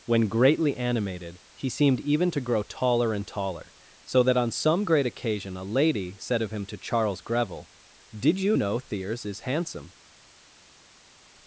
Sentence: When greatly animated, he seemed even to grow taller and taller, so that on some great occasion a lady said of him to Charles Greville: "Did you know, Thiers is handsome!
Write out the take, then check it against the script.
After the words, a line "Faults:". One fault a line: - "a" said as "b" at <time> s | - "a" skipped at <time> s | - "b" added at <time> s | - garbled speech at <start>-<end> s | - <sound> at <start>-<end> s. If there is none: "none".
When greatly animated, he seemed even to grow taller and taller, so that on some great occasion a lady said of him to Charles Greville: "Did you know, Thiers is handsome!
Faults:
none